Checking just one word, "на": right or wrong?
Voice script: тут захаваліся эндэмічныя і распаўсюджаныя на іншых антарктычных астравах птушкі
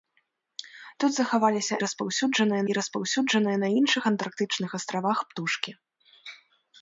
right